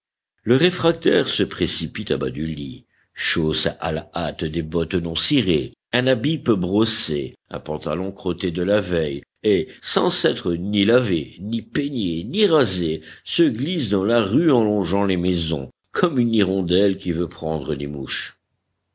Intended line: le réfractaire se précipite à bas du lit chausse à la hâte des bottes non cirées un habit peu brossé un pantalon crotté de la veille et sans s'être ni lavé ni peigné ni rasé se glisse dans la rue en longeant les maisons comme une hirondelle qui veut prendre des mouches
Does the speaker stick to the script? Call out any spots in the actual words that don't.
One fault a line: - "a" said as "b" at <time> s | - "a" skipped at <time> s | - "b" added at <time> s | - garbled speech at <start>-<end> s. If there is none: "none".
none